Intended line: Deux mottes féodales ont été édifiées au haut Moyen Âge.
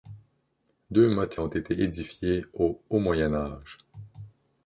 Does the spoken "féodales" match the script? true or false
false